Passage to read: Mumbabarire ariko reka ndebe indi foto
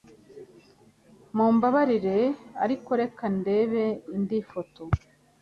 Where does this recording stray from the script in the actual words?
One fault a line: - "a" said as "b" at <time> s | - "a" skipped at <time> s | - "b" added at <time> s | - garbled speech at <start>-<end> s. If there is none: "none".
none